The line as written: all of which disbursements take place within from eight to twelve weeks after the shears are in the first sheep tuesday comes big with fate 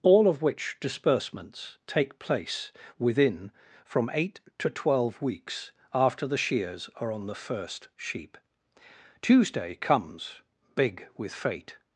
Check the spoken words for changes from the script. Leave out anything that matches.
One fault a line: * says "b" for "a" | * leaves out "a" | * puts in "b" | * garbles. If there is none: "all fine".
* says "on" for "in"